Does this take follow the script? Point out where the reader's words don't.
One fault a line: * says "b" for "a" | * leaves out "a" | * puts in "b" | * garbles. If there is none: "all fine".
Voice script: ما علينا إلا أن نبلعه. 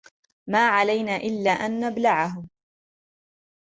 all fine